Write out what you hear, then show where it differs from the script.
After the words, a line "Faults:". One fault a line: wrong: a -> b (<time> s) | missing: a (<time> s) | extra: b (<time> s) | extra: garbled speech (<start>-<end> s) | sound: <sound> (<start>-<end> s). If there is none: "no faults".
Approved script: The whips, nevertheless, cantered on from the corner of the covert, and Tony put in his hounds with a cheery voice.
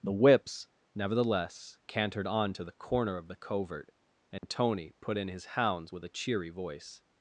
The whips, nevertheless, cantered on to the corner of the covert, and Tony put in his hounds with a cheery voice.
Faults:
wrong: from -> to (2.5 s)
sound: dropout (4.4-4.4 s)